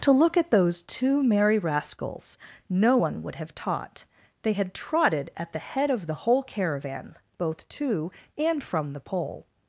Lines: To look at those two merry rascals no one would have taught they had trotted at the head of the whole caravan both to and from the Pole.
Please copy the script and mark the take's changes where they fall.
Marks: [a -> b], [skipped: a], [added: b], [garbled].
To look at those two merry rascals no one would have taught they had trotted at the head of the whole caravan both to and from the Pole.